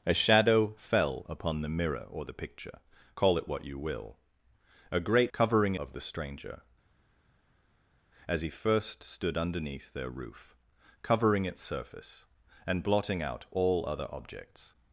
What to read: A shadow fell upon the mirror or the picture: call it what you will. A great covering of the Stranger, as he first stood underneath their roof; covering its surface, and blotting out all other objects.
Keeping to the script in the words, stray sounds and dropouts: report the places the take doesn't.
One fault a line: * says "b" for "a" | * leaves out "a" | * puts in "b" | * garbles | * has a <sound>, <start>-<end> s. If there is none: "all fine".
all fine